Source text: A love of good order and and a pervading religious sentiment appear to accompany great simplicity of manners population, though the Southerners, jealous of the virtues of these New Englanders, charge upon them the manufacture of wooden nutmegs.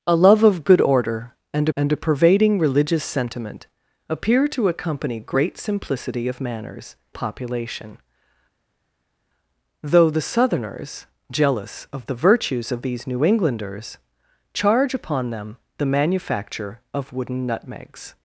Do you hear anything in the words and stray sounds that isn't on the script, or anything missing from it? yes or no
no